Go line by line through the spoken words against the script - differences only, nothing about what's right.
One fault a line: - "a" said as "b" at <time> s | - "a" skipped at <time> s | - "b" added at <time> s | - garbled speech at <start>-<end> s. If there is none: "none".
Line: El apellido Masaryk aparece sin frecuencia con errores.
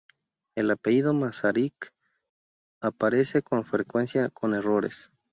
- "sin" said as "con" at 3.4 s